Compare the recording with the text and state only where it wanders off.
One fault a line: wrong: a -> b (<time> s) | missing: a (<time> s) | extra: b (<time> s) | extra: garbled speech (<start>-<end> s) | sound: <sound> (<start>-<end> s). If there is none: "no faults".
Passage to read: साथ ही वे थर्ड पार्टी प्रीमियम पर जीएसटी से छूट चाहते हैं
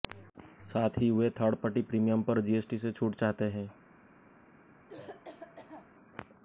sound: cough (4.9-5.9 s)